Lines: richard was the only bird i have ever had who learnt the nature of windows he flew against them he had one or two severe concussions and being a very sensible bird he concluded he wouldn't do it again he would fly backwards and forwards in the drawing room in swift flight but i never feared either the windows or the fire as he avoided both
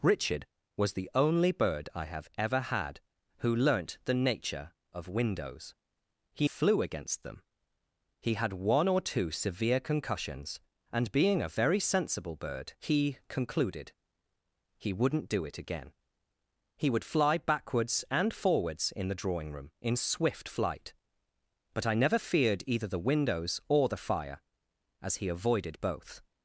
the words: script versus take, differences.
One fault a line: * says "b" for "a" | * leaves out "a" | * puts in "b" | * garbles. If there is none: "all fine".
all fine